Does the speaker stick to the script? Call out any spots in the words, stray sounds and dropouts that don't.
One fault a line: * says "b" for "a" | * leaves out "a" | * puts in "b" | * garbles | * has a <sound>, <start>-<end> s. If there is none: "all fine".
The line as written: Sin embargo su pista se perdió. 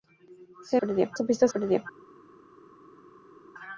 * says "perdió" for "embargo"
* leaves out "se"